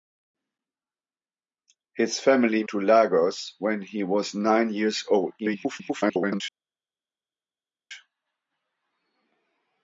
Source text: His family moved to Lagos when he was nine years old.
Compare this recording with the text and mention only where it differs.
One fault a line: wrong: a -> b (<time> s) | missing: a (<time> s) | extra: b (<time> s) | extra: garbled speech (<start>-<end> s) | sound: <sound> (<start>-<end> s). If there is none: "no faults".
missing: moved (2.6 s)
extra: garbled speech (5.4-6.4 s)